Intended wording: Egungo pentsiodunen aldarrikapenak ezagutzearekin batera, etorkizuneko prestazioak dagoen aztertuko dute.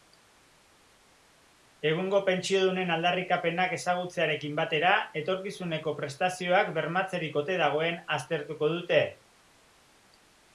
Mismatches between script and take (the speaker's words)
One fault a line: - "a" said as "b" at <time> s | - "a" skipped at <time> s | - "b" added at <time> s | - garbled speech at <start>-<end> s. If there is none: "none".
- "bermatzerik ote" added at 6.8 s